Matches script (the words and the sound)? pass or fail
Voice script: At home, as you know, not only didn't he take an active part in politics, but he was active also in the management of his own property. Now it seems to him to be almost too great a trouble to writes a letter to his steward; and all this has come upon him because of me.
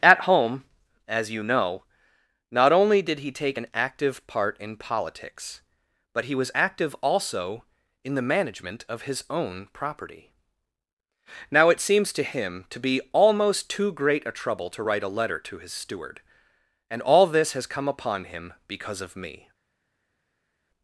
fail